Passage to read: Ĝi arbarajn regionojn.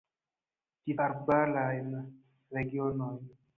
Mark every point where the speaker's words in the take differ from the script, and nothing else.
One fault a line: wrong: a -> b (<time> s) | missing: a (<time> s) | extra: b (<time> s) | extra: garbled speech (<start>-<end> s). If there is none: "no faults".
no faults